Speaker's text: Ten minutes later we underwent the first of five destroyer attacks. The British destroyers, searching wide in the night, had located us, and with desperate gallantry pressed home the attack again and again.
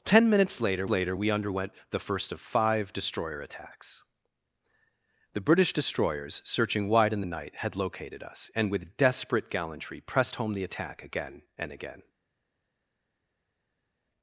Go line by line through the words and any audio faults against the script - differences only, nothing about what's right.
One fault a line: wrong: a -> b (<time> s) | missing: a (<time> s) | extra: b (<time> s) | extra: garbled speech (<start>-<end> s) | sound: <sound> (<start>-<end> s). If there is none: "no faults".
extra: later (0.9 s)